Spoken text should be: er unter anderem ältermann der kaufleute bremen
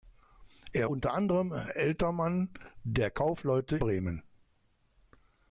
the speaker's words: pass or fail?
pass